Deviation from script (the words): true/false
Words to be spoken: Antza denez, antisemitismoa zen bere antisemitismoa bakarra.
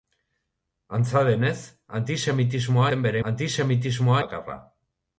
false